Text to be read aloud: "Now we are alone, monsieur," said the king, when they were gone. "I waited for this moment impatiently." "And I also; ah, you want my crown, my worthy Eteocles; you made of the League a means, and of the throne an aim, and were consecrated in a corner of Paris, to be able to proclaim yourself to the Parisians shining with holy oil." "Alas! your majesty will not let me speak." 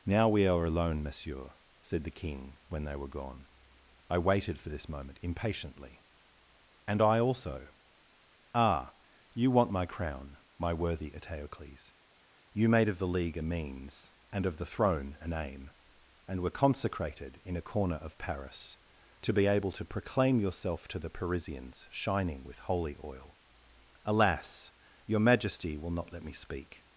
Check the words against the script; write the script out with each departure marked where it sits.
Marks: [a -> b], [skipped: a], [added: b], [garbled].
"Now we are alone, monsieur," said the king, when they were gone. "I waited for this moment impatiently." "And I also; ah, you want my crown, my worthy Eteocles; you made of the League a means, and of the throne an aim, and were consecrated in a corner of Paris, to be able to proclaim yourself to the Parisians shining with holy oil." "Alas! your majesty will not let me speak."